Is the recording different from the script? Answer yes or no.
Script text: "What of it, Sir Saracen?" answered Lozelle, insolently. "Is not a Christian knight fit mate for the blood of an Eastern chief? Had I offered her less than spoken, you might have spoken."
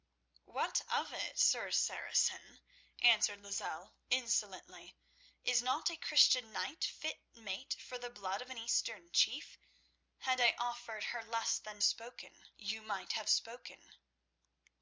no